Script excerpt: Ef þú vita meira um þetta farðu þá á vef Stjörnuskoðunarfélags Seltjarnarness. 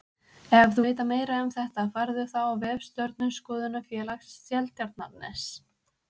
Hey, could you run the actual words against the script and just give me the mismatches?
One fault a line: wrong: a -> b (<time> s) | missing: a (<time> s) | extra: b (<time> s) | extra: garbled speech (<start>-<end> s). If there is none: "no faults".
no faults